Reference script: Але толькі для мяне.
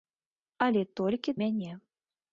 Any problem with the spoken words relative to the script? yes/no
yes